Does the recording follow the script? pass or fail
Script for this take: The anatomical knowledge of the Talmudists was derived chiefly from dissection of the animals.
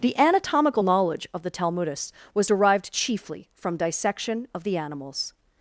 pass